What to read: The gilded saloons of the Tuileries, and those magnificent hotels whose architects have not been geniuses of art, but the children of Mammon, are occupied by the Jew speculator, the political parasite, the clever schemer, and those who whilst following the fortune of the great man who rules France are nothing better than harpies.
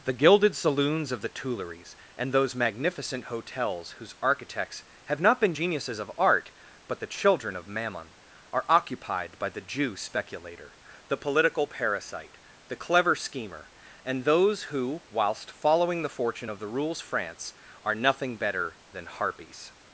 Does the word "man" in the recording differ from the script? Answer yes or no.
yes